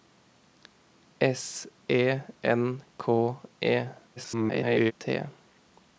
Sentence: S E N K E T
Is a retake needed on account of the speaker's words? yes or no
yes